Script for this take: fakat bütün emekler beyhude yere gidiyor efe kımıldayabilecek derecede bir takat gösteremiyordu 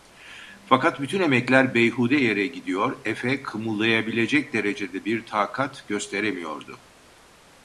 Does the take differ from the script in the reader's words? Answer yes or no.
no